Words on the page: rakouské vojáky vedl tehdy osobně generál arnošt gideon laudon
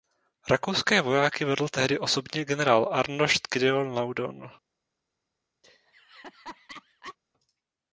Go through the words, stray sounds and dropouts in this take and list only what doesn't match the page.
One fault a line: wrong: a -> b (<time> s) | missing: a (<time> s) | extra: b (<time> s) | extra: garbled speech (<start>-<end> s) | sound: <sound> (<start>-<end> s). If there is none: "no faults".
sound: laugh (5.6-7.2 s)